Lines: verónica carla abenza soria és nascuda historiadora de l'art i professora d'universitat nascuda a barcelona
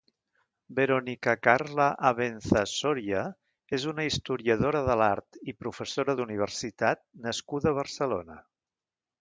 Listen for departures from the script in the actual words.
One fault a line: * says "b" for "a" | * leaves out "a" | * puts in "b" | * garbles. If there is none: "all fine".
* says "una" for "nascuda"